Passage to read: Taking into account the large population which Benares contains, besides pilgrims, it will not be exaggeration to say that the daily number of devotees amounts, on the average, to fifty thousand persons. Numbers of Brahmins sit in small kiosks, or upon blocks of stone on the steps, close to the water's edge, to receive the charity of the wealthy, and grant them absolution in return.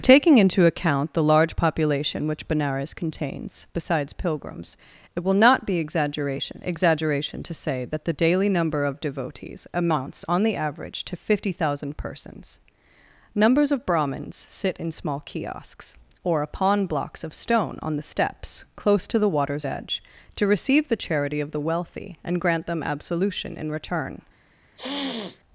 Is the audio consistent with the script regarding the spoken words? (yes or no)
no